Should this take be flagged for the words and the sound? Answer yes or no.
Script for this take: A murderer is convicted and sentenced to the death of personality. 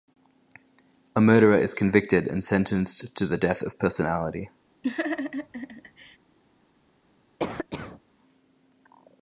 yes